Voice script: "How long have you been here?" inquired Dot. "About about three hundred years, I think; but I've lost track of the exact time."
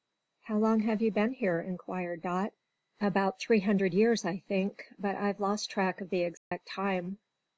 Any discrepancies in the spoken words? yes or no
yes